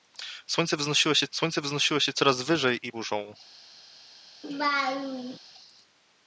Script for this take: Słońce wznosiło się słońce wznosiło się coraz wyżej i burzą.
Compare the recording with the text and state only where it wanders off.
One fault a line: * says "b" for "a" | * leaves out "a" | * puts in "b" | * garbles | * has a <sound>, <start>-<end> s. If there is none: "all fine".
* has a laugh, 4.4-5.4 s